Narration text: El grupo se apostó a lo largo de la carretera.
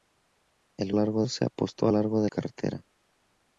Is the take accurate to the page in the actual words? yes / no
no